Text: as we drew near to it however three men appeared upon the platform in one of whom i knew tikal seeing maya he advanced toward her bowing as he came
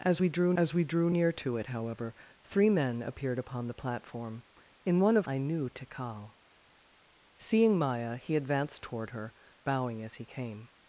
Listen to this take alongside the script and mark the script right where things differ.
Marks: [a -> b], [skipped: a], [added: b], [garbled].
as we drew [added: as we drew] near to it however three men appeared upon the platform in one of [skipped: whom] i knew tikal seeing maya he advanced toward her bowing as he came